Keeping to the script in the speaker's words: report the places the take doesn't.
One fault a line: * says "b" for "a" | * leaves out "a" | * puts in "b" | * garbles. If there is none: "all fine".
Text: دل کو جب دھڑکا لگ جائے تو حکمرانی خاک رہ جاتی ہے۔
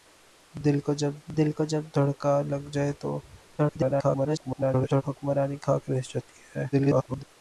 * puts in "دل کو جب"
* garbles
* garbles